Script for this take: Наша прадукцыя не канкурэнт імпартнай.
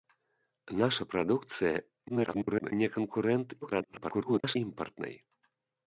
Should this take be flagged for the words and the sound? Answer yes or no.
yes